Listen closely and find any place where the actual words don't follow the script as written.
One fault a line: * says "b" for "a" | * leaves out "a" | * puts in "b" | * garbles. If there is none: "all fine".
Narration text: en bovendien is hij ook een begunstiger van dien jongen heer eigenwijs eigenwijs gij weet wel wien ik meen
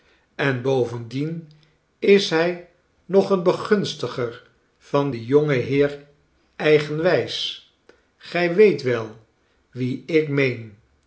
* says "nog" for "ook"
* leaves out "eigenwijs"